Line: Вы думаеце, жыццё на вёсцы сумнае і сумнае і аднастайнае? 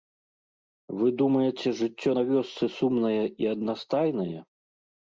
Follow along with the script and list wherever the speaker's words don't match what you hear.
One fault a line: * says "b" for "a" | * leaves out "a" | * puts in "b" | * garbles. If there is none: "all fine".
* leaves out "сумнае і"